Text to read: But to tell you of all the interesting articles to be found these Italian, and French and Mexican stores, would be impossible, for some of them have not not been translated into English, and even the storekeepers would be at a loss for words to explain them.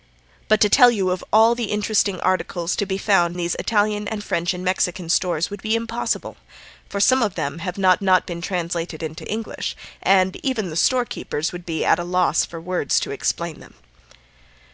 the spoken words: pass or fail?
pass